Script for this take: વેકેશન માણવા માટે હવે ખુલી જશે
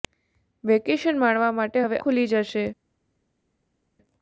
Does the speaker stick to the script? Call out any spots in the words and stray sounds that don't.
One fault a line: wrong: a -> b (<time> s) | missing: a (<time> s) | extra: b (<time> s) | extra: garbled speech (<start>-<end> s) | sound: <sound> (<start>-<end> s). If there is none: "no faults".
no faults